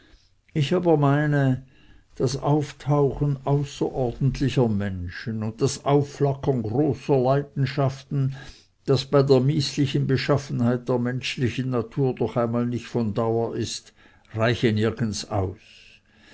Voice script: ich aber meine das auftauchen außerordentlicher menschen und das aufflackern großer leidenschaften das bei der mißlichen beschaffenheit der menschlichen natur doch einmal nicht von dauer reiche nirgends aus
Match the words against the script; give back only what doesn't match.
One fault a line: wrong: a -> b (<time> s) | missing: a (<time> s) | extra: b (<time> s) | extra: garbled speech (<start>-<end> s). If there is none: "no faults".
extra: ist (13.6 s)